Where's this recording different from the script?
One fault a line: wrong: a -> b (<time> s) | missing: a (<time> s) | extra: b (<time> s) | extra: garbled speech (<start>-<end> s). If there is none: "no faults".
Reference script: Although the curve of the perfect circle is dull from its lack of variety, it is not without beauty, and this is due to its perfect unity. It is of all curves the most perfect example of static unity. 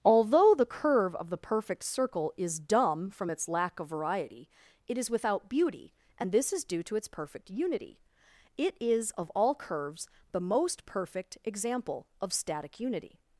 wrong: dull -> dumb (2.6 s)
missing: not (5.1 s)